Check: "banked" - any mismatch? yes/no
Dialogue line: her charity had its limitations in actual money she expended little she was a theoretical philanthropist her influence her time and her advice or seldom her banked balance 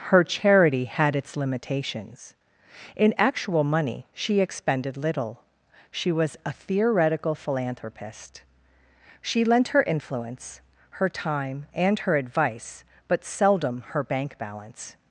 yes